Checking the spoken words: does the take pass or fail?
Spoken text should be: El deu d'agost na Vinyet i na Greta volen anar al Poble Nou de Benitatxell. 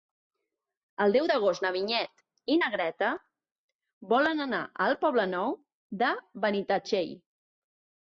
pass